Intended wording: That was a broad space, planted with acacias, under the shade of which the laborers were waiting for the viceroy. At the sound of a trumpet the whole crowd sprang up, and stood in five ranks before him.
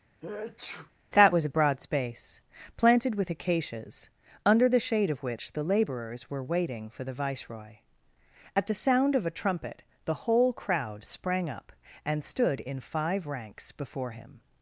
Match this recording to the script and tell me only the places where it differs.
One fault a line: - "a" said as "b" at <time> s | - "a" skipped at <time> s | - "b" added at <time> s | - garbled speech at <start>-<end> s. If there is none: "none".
none